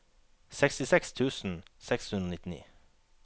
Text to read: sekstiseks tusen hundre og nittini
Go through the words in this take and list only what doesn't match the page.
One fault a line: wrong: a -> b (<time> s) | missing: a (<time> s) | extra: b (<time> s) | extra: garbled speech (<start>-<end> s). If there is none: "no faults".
extra: seks (1.9 s)